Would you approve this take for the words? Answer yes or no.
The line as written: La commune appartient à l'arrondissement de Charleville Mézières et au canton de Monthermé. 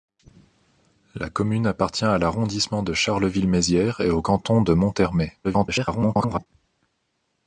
no